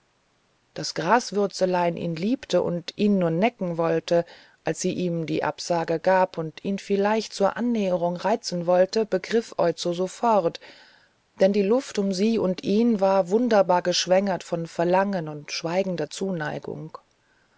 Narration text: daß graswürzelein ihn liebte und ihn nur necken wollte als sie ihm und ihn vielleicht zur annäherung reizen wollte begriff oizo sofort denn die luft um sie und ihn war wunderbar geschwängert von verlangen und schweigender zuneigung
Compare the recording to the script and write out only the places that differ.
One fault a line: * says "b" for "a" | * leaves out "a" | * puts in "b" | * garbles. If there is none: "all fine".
* puts in "die absage gab"